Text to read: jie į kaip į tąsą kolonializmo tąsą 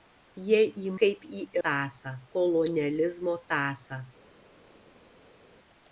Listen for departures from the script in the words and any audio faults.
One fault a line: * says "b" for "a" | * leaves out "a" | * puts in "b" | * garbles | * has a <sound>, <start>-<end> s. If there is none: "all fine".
all fine